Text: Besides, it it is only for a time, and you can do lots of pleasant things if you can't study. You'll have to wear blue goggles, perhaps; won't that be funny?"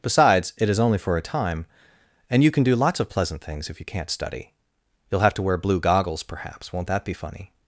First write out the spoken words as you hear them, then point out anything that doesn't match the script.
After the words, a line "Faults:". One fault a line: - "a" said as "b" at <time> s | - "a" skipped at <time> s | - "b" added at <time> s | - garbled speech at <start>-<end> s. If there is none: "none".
Besides, it is only for a time, and you can do lots of pleasant things if you can't study. You'll have to wear blue goggles, perhaps; won't that be funny?"
Faults:
- "it" skipped at 0.7 s